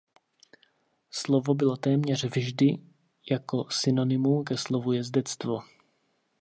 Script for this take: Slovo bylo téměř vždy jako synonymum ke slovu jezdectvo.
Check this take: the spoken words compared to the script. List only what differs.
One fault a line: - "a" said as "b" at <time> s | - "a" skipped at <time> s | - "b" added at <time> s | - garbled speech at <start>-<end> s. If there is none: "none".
none